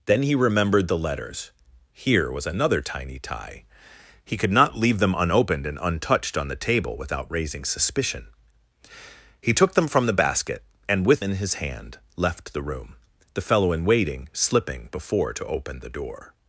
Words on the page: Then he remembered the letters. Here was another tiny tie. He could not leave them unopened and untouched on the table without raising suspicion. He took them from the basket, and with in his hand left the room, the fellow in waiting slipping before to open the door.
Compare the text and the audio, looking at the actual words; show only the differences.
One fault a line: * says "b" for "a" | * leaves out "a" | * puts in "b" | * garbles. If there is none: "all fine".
all fine